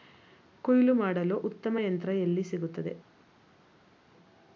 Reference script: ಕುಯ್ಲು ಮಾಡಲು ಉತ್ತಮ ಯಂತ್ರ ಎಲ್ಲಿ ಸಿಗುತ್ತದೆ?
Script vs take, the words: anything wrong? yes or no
no